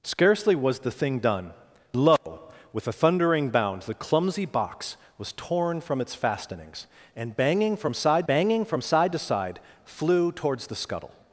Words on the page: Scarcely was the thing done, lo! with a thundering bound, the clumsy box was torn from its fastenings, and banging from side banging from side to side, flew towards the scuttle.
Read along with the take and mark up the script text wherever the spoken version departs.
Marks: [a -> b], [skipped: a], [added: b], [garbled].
Scarcely was the thing done, lo! with a thundering bound, the clumsy box was torn from its fastenings, and banging from side banging from side to side, flew towards the scuttle.